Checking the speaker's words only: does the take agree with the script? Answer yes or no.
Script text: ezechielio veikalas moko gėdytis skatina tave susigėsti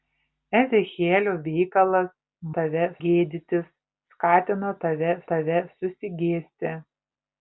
no